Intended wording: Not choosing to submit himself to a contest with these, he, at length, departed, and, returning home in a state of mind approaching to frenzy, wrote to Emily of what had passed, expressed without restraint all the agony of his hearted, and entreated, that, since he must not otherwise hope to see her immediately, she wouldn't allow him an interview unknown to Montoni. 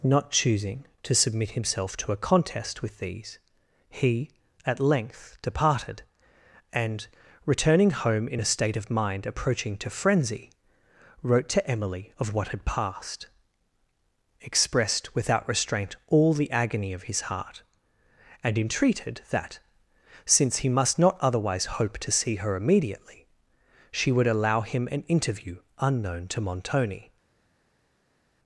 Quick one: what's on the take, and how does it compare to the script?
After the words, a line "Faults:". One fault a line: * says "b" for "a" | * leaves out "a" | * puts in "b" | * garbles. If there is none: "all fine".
Not choosing to submit himself to a contest with these, he, at length, departed, and, returning home in a state of mind approaching to frenzy, wrote to Emily of what had passed, expressed without restraint all the agony of his heart, and entreated, that, since he must not otherwise hope to see her immediately, she would allow him an interview unknown to Montoni.
Faults:
* says "heart" for "hearted"
* says "would" for "wouldn't"